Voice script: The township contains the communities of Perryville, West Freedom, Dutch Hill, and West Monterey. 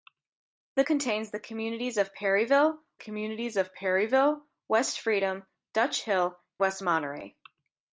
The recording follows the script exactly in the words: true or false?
false